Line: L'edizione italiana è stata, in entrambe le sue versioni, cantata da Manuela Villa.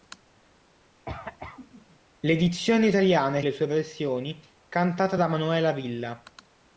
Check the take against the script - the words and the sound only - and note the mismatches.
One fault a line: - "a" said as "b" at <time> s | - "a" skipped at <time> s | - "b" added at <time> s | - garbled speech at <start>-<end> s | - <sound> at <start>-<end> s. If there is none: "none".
- cough at 1.1-2.0 s
- "stata in entrambe" skipped at 3.4 s